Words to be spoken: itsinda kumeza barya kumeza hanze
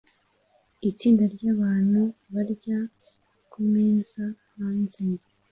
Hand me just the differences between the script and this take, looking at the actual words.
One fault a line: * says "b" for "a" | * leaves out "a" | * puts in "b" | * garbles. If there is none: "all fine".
* says "ryabantu" for "kumeza"